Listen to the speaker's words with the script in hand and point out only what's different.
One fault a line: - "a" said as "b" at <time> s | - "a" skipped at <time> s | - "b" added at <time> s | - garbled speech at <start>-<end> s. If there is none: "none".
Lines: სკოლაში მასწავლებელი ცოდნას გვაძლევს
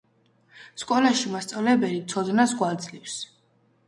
none